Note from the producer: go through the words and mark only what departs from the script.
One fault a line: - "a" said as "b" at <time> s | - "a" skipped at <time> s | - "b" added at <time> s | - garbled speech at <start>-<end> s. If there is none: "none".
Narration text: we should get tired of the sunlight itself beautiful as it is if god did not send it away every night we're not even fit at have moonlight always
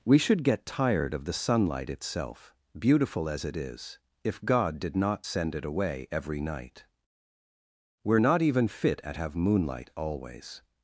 none